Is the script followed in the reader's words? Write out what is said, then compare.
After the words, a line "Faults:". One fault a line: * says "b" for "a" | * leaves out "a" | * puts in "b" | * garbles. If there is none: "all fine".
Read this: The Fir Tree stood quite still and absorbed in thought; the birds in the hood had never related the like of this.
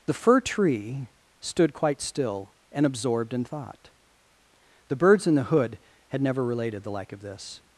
The Fir Tree stood quite still and absorbed in thought; the birds in the hood had never related the like of this.
Faults:
all fine